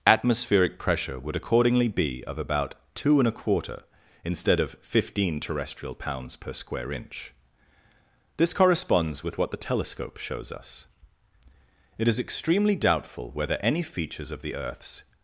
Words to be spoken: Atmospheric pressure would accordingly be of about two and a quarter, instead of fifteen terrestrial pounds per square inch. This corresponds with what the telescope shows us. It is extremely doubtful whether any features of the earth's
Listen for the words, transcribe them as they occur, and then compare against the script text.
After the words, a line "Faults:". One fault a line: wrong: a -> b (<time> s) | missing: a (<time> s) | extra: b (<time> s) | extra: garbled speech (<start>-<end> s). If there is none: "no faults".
Atmospheric pressure would accordingly be of about two and a quarter, instead of fifteen terrestrial pounds per square inch. This corresponds with what the telescope shows us. It is extremely doubtful whether any features of the earth's
Faults:
no faults